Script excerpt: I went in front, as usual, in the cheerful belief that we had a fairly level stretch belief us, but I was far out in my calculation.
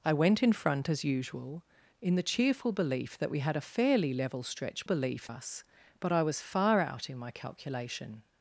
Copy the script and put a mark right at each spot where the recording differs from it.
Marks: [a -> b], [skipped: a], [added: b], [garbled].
I went in front, as usual, in the cheerful belief that we had a fairly level stretch belief us, but I was far out in my calculation.